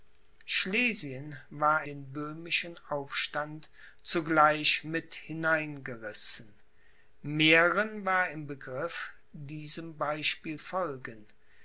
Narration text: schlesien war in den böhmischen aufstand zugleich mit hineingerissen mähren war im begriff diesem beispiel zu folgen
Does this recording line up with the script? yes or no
no